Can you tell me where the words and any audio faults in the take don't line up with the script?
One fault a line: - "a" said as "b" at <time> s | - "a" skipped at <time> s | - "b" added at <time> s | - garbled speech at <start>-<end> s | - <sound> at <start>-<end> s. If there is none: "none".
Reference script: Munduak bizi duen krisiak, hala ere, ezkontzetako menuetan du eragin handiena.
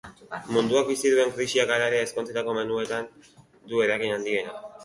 none